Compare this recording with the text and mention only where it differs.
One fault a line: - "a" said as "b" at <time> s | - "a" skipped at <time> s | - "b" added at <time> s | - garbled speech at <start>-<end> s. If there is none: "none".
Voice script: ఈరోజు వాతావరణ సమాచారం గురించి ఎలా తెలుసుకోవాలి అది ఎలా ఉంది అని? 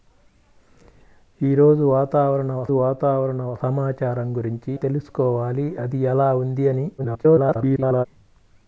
- "వాతావరణ" added at 2.7 s
- "ఎలా" skipped at 4.7 s
- garbled speech at 7.0-8.1 s